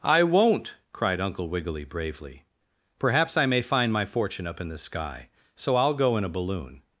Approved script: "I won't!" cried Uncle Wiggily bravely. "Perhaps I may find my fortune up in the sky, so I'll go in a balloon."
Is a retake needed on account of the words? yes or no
no